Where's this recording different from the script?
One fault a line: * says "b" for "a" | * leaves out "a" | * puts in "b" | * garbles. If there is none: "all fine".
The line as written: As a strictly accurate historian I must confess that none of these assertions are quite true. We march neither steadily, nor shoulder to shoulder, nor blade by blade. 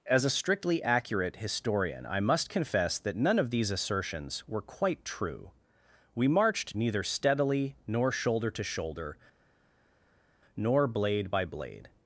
* says "were" for "are"
* says "marched" for "march"